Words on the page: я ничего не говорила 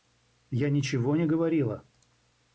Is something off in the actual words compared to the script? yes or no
no